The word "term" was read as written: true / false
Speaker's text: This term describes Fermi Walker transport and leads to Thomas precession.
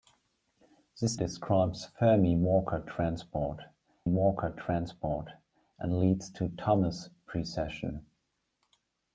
false